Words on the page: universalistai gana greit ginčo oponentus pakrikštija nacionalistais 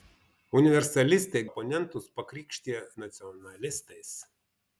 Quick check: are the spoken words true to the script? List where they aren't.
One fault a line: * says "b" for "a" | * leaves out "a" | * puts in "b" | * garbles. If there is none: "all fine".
* leaves out "gana greit ginčo"